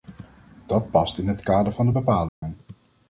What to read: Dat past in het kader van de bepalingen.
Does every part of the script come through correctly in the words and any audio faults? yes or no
no